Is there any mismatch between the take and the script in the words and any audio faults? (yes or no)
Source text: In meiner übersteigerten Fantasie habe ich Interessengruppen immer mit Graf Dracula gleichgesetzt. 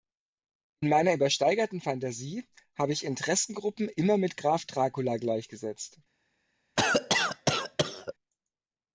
yes